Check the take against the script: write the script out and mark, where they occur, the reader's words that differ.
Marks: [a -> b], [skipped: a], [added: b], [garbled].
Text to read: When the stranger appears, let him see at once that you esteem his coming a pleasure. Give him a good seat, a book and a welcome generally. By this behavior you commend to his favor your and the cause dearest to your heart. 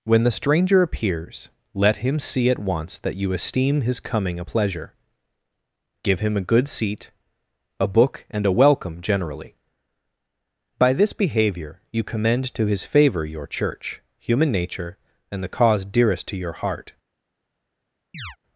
When the stranger appears, let him see at once that you esteem his coming a pleasure. Give him a good seat, a book and a welcome generally. By this behavior you commend to his favor your [added: church human nature] and the cause dearest to your heart.